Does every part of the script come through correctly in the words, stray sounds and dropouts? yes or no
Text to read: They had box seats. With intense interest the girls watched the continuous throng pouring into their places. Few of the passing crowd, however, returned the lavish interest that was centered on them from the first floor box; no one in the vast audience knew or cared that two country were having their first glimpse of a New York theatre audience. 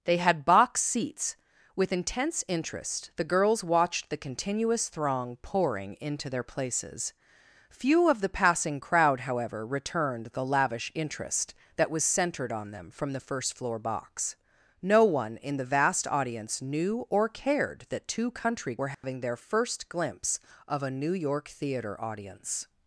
no